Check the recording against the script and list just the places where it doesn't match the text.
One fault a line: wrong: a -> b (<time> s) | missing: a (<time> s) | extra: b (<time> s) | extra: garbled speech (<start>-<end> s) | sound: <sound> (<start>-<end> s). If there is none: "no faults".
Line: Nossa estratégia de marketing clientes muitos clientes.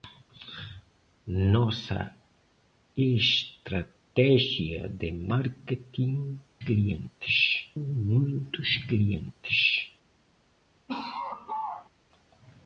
sound: laugh (10.9-11.9 s)